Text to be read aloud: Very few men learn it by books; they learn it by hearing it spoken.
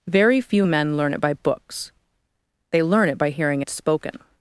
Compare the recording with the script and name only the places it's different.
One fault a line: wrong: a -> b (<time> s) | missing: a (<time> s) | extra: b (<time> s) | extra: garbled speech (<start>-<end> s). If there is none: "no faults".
no faults